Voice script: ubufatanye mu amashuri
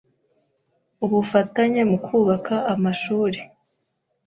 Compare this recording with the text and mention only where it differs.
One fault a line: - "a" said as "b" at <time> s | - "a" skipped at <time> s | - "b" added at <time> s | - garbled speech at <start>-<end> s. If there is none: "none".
- "kubaka" added at 2.1 s